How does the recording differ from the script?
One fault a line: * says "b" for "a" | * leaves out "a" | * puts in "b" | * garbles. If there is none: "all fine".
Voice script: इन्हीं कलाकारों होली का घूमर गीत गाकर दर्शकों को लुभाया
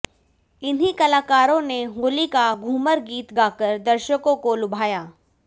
* puts in "ने"